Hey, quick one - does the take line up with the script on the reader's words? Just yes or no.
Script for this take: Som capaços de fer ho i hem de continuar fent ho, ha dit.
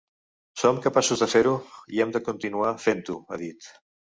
yes